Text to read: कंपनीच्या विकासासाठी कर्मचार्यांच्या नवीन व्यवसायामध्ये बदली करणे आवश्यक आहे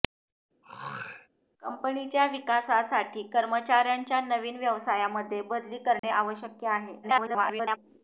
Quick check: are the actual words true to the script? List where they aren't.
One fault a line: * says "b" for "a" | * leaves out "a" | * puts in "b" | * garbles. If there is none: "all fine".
* garbles